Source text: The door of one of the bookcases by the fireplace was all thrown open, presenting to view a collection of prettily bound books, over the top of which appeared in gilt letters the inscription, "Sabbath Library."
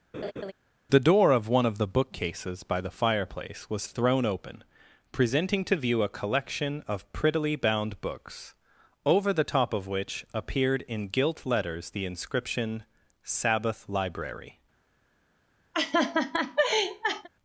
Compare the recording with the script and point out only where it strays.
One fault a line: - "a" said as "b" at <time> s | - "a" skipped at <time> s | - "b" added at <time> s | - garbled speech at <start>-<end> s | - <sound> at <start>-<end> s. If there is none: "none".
- laugh at 0.1-0.5 s
- "all" skipped at 3.9 s
- laugh at 15.7-17.3 s